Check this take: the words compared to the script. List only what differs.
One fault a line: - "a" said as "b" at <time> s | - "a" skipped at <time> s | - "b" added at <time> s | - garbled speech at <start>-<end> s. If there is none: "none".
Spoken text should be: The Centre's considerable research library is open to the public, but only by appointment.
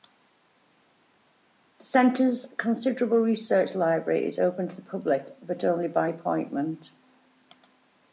none